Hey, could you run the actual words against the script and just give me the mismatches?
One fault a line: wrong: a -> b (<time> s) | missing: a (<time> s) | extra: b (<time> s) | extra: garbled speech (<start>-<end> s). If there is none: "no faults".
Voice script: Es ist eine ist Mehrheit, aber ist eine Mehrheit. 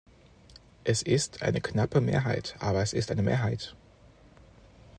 wrong: ist -> knappe (1.6 s)
extra: es (2.8 s)